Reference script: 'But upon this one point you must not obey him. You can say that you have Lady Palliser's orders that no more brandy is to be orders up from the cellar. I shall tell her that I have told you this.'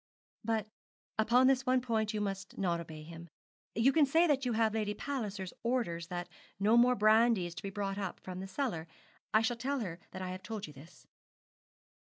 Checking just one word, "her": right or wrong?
right